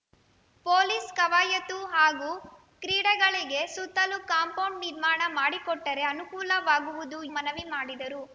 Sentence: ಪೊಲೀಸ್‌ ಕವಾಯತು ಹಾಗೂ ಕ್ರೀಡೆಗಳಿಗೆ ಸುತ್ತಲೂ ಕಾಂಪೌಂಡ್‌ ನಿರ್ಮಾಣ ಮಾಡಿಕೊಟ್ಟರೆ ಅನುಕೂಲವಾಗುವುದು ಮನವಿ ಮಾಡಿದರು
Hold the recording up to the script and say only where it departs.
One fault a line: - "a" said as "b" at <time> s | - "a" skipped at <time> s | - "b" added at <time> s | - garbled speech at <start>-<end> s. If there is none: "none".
none